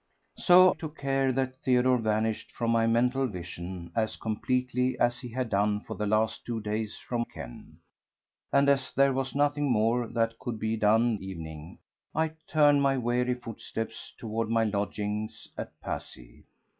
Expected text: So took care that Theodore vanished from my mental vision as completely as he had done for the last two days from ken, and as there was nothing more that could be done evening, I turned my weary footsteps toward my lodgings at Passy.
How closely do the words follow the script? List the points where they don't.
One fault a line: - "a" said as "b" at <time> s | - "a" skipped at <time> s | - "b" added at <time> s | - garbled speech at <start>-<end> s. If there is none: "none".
none